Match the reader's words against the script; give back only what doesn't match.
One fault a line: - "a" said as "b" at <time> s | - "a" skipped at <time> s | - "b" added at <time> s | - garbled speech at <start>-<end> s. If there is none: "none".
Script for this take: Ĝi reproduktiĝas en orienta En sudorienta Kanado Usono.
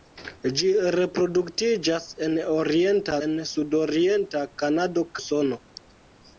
none